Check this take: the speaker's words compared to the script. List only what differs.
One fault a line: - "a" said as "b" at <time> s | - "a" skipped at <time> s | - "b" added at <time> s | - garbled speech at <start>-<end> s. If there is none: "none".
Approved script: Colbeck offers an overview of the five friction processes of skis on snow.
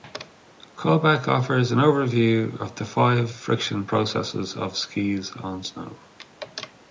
none